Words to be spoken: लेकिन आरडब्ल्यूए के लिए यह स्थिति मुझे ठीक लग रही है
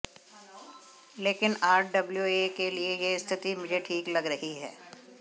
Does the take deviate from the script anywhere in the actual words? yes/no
no